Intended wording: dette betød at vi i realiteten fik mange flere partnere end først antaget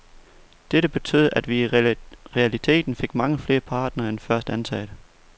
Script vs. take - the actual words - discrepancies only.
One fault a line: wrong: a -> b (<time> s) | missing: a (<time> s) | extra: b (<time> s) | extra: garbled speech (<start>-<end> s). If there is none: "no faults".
no faults